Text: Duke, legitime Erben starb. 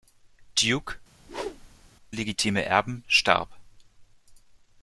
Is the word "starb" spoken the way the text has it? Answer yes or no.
yes